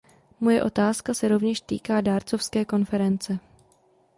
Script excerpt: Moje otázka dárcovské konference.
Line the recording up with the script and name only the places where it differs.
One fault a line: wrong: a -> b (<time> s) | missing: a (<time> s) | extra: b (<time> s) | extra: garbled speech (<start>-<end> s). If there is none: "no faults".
extra: se rovněž týká (1.1 s)